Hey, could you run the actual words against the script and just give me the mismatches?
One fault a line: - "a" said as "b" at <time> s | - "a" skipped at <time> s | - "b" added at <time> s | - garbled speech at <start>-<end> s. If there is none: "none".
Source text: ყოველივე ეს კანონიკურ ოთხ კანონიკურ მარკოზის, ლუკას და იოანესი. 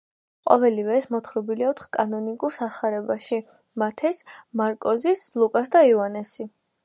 - "კანონიკურ" said as "მოთხრობილია" at 1.1 s
- "სახარებაში მათეს" added at 2.5 s